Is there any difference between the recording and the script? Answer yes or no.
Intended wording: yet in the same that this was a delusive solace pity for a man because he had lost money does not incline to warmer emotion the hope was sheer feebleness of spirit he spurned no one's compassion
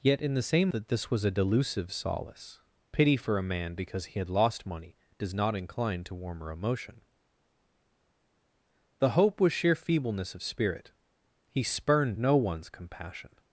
no